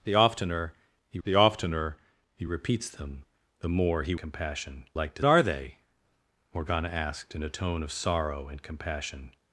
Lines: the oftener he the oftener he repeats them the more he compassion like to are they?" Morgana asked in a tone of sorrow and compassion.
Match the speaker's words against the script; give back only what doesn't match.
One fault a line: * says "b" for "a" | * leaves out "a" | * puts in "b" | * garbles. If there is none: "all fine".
all fine